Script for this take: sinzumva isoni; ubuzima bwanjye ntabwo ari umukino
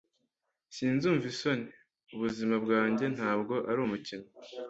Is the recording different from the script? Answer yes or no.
no